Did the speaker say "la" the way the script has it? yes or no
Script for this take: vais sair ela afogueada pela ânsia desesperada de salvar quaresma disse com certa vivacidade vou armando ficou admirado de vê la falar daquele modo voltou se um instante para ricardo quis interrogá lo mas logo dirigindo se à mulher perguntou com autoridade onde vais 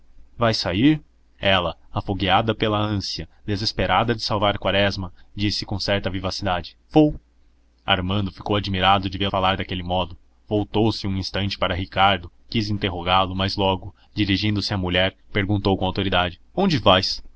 no